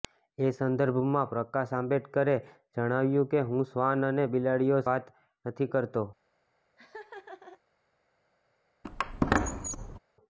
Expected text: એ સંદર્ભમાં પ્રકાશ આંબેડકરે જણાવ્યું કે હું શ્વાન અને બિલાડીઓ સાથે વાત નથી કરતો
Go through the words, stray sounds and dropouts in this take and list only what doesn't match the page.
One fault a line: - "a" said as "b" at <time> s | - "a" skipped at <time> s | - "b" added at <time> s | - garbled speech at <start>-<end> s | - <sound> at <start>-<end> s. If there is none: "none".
- "સાથે" skipped at 4.8 s
- laugh at 6.8-7.6 s
- squeak at 8.8-10.0 s